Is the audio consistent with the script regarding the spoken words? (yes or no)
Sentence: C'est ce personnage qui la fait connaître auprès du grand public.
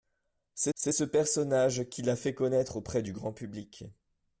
no